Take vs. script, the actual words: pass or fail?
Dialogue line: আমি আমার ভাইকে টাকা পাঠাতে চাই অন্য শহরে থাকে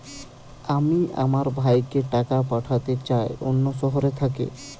pass